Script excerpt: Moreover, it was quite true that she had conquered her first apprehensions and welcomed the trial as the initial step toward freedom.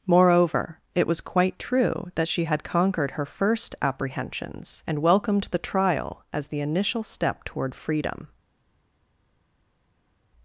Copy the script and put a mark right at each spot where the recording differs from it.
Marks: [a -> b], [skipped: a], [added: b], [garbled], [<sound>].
Moreover, it was quite true that she had conquered her first apprehensions and welcomed the trial as the initial step toward freedom.